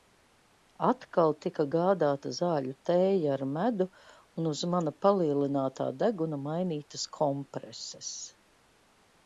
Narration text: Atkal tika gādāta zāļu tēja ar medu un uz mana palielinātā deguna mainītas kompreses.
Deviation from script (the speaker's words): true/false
false